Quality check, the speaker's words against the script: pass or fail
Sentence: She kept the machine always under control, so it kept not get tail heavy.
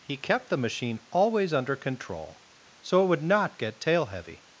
fail